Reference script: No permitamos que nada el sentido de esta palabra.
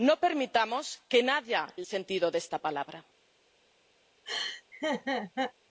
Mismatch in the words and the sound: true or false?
true